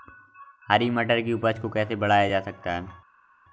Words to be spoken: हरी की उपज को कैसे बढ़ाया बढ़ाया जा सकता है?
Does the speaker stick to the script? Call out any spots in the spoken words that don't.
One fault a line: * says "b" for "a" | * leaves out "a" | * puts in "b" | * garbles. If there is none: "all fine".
* puts in "मटर"
* leaves out "बढ़ाया"